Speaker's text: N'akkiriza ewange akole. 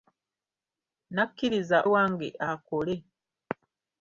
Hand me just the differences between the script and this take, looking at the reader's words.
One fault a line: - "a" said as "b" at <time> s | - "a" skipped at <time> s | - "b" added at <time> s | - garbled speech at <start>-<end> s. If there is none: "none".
none